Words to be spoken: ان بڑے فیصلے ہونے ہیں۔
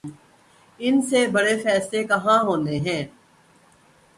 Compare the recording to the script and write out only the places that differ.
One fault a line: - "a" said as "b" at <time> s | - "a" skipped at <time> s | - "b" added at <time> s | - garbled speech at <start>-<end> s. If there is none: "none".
- "سے" added at 1.0 s
- "کہاں" added at 2.0 s